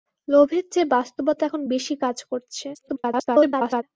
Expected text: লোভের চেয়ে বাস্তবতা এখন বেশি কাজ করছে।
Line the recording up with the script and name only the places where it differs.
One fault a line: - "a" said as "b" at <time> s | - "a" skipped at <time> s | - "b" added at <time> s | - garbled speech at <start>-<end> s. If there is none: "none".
- garbled speech at 2.7-3.8 s